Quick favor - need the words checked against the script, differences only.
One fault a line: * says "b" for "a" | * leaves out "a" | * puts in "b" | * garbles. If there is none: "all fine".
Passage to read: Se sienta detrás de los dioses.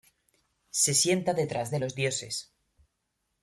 all fine